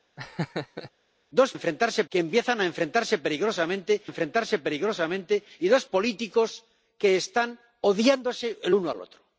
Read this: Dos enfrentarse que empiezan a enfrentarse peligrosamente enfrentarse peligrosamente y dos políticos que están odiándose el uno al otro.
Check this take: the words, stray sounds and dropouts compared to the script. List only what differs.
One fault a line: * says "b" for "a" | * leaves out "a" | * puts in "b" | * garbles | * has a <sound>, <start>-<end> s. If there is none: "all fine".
* has a laugh, 0.2-0.9 s